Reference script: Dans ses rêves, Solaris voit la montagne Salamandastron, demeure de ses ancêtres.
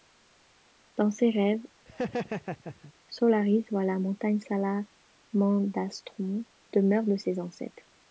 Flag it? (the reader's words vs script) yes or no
no